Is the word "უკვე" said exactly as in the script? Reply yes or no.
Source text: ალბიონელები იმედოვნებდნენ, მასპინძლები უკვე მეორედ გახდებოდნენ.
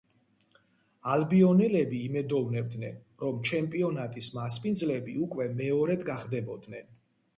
yes